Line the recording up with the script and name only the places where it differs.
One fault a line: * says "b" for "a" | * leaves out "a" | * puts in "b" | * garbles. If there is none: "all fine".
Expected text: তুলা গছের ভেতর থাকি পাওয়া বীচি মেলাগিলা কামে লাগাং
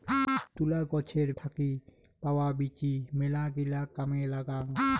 * leaves out "ভেতর"